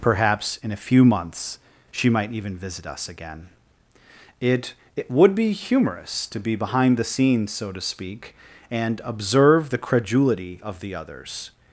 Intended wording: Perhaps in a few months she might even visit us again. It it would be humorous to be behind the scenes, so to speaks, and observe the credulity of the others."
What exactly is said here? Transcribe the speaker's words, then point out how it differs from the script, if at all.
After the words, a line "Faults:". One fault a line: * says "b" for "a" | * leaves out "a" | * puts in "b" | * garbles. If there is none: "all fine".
Perhaps in a few months she might even visit us again. It it would be humorous to be behind the scenes, so to speak, and observe the credulity of the others."
Faults:
* says "speak" for "speaks"